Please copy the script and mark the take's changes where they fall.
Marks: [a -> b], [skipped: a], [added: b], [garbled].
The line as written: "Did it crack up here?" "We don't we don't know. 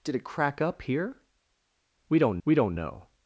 "Did it crack up here?" "We don't we don't know.